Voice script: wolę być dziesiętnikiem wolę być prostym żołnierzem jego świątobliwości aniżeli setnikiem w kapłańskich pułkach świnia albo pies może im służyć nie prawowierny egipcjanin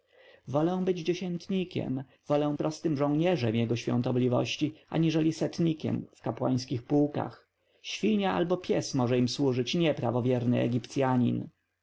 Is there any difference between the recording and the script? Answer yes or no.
yes